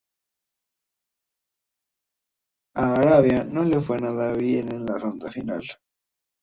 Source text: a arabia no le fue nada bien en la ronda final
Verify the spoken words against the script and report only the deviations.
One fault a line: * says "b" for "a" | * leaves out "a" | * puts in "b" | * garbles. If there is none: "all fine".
all fine